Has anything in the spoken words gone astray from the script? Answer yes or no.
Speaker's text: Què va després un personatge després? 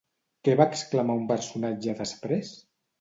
yes